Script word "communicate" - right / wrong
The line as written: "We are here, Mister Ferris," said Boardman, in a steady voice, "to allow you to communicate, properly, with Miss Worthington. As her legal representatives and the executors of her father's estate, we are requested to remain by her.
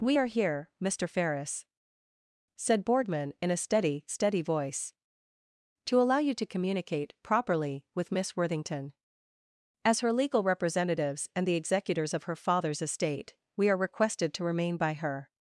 right